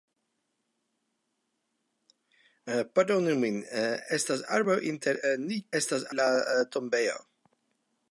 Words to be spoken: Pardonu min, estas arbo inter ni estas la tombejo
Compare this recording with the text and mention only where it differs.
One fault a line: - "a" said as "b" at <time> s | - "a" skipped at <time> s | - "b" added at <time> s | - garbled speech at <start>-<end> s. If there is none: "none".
none